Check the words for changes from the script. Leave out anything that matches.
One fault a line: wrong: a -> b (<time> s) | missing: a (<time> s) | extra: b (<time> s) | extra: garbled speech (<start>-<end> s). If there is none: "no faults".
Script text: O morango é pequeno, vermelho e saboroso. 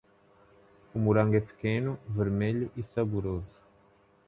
no faults